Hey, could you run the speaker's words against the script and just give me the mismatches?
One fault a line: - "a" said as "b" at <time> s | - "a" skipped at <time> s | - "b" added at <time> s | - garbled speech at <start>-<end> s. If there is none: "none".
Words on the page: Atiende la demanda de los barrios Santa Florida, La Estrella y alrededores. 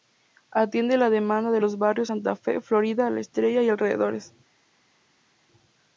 - "Fe" added at 2.4 s